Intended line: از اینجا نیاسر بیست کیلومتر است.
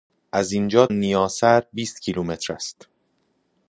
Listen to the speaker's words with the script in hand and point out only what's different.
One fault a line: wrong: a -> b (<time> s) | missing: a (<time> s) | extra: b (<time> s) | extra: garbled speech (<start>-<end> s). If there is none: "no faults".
no faults